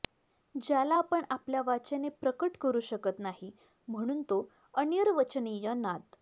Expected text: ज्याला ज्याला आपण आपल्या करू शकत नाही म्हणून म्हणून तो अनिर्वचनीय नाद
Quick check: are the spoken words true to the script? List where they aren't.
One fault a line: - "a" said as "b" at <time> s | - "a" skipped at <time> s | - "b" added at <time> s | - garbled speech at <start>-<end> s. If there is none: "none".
- "ज्याला" skipped at 0.9 s
- "वाचेने प्रकट" added at 1.6 s
- "म्हणून" skipped at 4.2 s